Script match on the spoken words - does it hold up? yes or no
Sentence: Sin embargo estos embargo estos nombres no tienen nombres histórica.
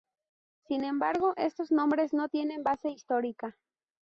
no